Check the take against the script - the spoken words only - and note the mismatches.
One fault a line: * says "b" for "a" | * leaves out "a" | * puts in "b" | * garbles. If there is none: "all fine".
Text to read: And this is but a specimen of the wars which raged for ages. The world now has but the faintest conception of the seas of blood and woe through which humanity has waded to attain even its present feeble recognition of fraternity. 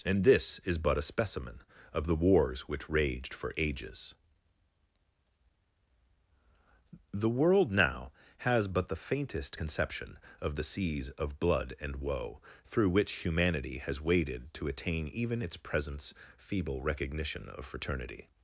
* says "presents" for "present"